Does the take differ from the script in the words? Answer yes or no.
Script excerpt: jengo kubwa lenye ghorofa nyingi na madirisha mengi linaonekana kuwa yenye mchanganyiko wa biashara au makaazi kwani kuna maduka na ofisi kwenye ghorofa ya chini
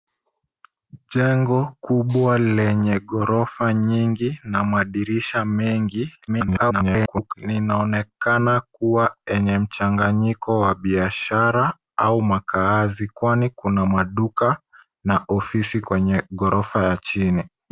yes